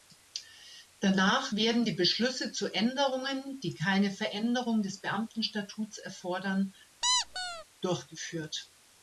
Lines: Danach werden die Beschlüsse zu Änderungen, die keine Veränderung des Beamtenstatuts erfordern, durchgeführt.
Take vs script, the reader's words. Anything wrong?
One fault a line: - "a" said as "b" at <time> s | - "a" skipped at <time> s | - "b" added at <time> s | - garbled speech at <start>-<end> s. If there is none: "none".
none